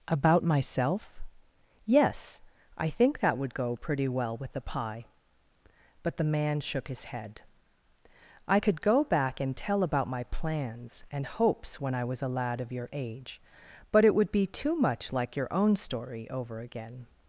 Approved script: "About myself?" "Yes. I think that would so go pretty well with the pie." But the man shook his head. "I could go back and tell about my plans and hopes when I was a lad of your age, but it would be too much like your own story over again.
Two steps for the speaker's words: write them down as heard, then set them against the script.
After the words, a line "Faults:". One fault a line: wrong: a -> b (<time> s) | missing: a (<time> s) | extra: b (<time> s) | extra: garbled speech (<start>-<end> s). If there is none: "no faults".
"About myself?" "Yes. I think that would go pretty well with the pie." But the man shook his head. "I could go back and tell about my plans and hopes when I was a lad of your age, but it would be too much like your own story over again.
Faults:
missing: so (3.5 s)